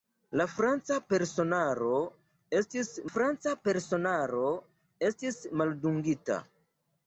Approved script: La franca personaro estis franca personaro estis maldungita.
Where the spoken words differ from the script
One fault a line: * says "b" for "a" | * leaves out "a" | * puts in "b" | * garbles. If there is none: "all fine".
all fine